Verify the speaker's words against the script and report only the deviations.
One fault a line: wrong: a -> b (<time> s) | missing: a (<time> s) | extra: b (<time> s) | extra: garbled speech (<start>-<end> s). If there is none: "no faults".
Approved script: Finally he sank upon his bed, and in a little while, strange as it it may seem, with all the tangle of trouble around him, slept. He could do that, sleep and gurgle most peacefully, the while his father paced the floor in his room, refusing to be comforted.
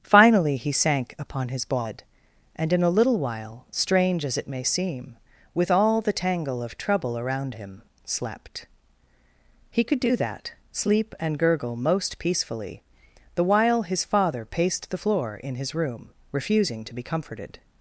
missing: it (4.5 s)